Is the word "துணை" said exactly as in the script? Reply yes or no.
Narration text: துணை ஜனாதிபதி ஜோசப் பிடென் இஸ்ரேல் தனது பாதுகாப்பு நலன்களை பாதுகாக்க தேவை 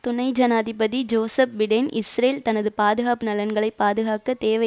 yes